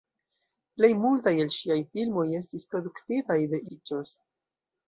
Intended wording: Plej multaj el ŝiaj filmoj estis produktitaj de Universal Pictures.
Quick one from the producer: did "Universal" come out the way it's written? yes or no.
no